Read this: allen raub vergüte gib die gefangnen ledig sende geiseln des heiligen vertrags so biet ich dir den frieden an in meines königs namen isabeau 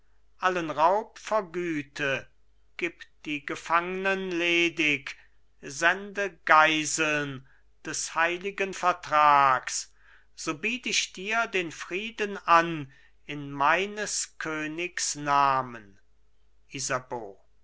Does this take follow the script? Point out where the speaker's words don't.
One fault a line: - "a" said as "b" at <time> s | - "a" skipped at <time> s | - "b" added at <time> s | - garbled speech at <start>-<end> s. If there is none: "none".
none